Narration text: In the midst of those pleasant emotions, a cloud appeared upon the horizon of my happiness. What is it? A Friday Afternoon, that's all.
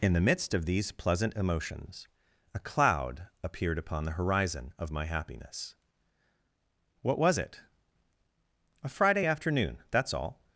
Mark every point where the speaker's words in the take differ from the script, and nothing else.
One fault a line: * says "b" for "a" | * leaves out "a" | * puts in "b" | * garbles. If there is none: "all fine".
* says "these" for "those"
* says "was" for "is"